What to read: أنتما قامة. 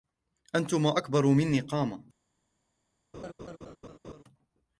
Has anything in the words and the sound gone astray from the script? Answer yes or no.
yes